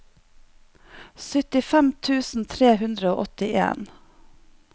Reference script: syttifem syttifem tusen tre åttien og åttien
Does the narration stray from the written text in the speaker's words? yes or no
yes